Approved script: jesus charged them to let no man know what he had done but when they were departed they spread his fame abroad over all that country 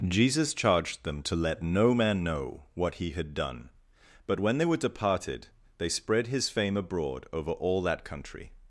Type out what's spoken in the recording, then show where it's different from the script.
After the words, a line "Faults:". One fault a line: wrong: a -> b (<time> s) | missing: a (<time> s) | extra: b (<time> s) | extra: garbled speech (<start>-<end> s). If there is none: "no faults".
jesus charged them to let no man know what he had done but when they were departed they spread his fame abroad over all that country
Faults:
no faults